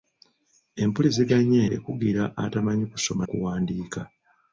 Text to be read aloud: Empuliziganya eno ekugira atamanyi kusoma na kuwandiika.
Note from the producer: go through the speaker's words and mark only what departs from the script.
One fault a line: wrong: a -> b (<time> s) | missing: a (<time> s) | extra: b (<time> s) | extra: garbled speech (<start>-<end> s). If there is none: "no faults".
missing: eno (1.6 s)
missing: na (3.2 s)